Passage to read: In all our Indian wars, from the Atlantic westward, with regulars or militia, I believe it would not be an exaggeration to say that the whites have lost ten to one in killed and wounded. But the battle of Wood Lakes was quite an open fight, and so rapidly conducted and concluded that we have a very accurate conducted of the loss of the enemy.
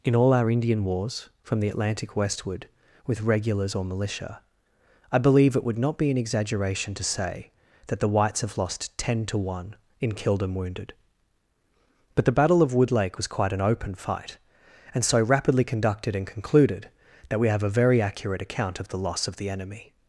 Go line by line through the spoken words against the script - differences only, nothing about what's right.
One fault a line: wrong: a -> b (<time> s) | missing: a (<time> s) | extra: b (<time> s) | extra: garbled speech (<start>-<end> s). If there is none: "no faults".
wrong: Lakes -> Lake (12.9 s)
wrong: conducted -> account (18.4 s)